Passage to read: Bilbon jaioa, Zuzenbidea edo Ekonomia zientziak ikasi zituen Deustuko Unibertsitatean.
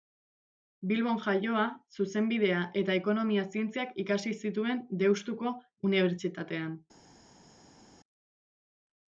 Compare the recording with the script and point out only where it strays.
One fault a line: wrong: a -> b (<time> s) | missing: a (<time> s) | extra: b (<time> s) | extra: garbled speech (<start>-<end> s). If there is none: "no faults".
wrong: edo -> eta (2.8 s)